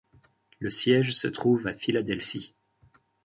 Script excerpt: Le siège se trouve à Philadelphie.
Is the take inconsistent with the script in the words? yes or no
no